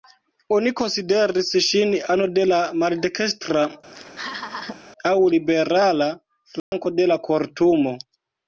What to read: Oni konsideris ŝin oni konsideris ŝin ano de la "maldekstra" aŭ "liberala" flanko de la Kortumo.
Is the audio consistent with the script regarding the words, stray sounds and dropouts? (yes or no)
no